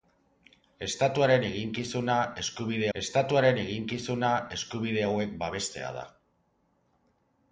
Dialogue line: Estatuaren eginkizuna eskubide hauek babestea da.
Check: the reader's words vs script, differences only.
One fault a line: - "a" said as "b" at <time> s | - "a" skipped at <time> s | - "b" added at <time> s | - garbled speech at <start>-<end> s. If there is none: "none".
- "estatuaren eginkizuna eskubide" added at 3.0 s